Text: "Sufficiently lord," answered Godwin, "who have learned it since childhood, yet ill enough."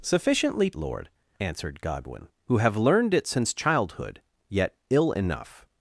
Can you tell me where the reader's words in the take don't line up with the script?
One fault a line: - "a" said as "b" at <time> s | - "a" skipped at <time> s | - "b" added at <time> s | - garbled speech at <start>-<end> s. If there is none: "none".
none